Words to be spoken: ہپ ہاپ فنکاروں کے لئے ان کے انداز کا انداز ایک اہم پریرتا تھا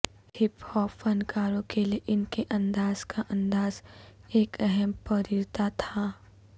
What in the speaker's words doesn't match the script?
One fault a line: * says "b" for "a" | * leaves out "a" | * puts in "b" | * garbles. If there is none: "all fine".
all fine